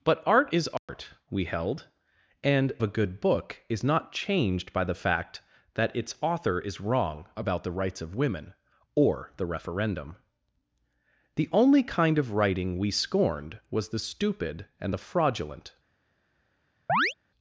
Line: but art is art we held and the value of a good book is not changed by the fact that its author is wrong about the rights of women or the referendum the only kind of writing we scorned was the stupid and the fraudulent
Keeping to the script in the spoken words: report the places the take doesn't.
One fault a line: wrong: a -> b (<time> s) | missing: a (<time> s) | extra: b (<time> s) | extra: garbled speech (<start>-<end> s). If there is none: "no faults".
missing: the value of (2.7 s)